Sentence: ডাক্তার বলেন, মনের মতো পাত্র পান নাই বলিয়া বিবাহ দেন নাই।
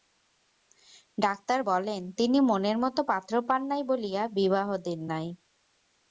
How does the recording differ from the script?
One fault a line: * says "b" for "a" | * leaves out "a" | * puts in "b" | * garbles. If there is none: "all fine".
* puts in "তিনি"